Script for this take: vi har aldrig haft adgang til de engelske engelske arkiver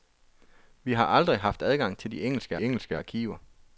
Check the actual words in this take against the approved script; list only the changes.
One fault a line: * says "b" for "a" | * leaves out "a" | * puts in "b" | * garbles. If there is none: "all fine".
all fine